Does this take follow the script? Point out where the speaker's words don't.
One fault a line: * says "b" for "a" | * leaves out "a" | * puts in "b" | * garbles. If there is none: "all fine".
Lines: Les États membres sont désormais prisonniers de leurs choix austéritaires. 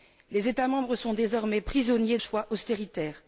* leaves out "de leurs"